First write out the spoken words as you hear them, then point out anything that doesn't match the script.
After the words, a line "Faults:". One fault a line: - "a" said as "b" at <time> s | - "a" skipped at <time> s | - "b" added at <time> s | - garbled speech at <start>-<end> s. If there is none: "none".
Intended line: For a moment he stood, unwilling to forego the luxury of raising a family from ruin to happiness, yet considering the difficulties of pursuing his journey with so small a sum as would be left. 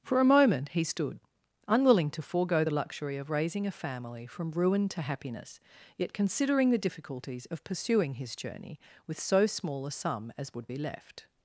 For a moment he stood, unwilling to forego the luxury of raising a family from ruin to happiness, yet considering the difficulties of pursuing his journey with so small a sum as would be left.
Faults:
none